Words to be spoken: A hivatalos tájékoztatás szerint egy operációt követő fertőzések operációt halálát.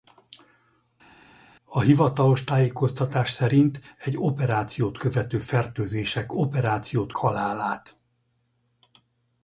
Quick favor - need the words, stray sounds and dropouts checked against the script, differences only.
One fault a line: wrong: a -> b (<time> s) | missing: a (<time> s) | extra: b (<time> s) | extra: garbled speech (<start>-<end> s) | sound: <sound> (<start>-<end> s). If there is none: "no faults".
no faults